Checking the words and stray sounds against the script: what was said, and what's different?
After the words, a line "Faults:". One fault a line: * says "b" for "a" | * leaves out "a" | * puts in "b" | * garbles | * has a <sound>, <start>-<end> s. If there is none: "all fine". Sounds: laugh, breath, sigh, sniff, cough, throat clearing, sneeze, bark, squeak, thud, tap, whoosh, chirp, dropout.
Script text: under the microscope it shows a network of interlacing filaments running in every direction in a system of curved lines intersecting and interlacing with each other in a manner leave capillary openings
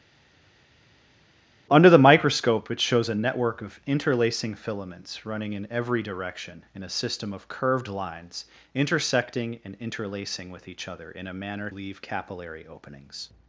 under the microscope it shows a network of interlacing filaments running in every direction in a system of curved lines intersecting and interlacing with each other in a manner leave capillary openings
Faults:
all fine